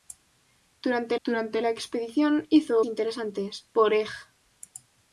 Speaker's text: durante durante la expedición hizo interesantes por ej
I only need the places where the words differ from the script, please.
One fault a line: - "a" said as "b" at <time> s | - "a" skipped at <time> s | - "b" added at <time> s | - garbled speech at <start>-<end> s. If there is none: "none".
none